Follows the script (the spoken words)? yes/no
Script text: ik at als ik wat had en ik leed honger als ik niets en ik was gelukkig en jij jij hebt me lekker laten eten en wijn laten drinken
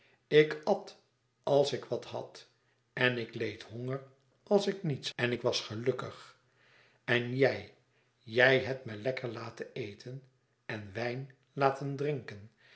yes